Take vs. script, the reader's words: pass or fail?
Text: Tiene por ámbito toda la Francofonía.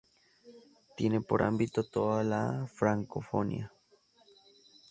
pass